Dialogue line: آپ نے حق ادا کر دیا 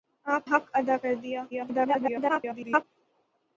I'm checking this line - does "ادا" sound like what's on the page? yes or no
yes